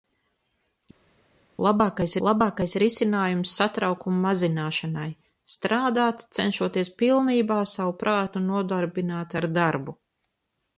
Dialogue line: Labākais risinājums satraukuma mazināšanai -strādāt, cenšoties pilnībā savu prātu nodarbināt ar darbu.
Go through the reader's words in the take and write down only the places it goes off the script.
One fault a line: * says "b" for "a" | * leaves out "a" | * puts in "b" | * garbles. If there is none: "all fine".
* puts in "labākais"